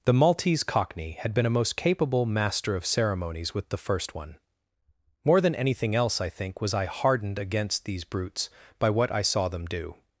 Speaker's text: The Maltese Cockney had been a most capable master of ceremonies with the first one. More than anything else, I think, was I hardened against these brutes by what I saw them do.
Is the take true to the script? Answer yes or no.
yes